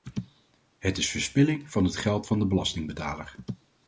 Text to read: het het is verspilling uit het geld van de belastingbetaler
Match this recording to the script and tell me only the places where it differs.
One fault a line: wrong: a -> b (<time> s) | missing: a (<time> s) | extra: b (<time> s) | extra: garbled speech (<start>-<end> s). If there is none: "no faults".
missing: het (1.0 s)
wrong: uit -> van (1.7 s)